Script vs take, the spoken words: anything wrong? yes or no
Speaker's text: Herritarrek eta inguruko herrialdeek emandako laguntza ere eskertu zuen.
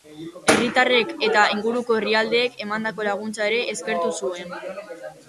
no